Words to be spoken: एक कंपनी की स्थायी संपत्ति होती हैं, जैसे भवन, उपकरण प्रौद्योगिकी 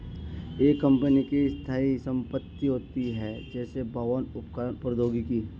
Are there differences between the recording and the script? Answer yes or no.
no